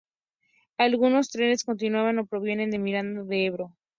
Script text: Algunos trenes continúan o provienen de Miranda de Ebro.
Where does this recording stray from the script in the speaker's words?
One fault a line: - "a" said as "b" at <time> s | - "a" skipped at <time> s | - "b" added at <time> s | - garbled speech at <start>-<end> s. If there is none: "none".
none